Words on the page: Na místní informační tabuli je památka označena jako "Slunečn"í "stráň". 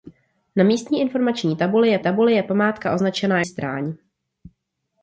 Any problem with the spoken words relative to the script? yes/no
yes